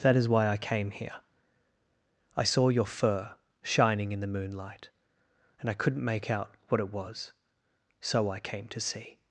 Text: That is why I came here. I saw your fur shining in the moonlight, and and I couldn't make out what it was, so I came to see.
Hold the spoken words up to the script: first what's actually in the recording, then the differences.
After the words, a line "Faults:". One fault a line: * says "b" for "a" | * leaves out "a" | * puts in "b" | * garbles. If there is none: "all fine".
That is why I came here. I saw your fur shining in the moonlight, and I couldn't make out what it was, so I came to see.
Faults:
* leaves out "and"